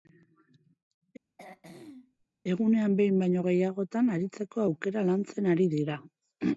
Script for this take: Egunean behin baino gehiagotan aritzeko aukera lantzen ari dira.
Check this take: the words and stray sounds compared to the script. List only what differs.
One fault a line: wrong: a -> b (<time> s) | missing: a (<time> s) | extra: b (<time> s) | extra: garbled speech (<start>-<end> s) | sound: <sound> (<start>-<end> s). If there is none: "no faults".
sound: throat clearing (1.4-2.3 s)